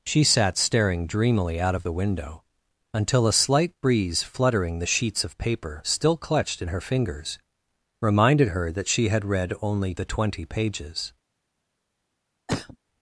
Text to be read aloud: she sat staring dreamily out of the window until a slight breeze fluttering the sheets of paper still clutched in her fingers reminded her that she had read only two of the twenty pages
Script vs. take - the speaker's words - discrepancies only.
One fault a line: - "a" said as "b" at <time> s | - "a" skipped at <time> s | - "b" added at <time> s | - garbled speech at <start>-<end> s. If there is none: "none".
- "two of" skipped at 9.9 s